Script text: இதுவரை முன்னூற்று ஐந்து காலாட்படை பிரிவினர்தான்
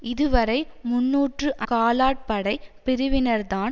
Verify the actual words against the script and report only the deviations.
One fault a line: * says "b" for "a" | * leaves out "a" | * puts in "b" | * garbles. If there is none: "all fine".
* leaves out "ஐந்து"